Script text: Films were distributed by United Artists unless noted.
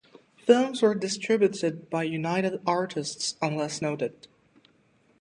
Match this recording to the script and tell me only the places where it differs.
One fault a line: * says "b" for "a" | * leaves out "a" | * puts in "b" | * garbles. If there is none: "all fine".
all fine